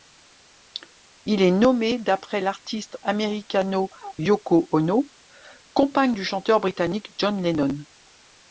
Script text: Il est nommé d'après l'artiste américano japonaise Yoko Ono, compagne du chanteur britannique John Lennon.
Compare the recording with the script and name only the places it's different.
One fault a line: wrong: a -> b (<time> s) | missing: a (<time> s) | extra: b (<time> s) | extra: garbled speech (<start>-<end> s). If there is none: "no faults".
missing: japonaise (3.9 s)